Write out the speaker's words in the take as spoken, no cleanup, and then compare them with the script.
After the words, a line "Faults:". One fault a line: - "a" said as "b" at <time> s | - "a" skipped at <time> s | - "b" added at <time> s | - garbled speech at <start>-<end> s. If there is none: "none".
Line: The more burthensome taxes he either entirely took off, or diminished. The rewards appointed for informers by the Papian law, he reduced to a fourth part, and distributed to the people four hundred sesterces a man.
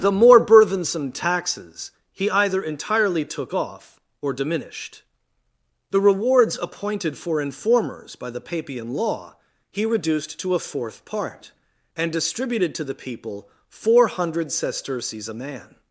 The more burthensome taxes he either entirely took off, or diminished. The rewards appointed for informers by the Papian law, he reduced to a fourth part, and distributed to the people four hundred sesterces a man.
Faults:
none